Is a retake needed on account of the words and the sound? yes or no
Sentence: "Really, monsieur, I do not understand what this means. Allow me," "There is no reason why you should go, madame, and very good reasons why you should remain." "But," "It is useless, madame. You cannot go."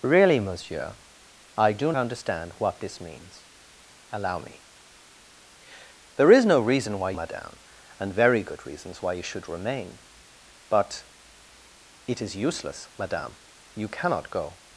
yes